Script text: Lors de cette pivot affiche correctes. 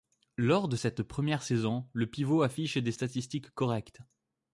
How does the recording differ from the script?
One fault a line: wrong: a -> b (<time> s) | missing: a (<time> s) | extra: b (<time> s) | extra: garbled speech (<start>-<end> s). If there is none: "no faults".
extra: première saison le (1.0 s)
extra: des statistiques (2.8 s)